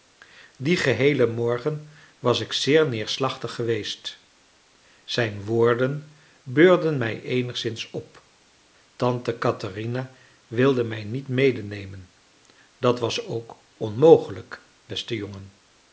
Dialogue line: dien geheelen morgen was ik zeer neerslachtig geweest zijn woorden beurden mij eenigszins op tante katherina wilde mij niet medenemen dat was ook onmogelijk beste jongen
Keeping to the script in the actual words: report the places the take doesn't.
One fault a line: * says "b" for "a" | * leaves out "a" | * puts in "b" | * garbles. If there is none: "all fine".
all fine